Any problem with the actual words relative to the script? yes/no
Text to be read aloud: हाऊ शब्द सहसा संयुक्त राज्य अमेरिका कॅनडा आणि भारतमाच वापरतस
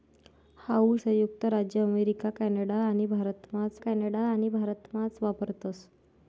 yes